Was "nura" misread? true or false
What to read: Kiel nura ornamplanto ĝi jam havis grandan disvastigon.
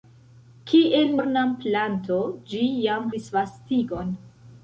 true